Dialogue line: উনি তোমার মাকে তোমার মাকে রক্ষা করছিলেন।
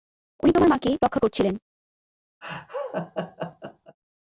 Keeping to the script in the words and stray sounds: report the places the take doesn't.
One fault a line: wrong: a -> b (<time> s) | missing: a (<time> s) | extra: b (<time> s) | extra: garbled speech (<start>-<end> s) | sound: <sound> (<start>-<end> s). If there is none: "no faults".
missing: তোমার মাকে (0.9 s)
sound: laugh (2.4-4.0 s)